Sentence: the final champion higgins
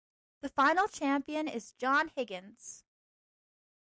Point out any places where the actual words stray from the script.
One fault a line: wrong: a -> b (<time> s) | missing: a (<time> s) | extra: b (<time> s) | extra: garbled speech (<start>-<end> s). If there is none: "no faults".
extra: is john (1.5 s)